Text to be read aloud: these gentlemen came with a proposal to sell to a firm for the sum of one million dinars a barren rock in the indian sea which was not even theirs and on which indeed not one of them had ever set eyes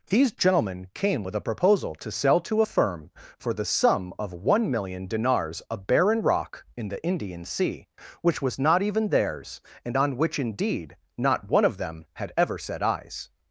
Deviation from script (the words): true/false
false